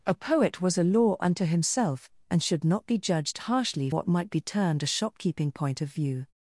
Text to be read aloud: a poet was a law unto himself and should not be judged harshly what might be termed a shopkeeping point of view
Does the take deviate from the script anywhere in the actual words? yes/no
no